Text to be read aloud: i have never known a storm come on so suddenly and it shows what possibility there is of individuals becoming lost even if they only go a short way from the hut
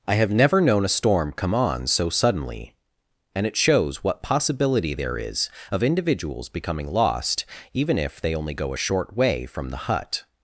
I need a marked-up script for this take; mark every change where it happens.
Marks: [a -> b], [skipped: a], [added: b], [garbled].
i have never known a storm come on so suddenly and it shows what possibility there is of individuals becoming lost even if they only go a short way from the hut